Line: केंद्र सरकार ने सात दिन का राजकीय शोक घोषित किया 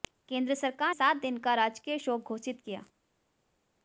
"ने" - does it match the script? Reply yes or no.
no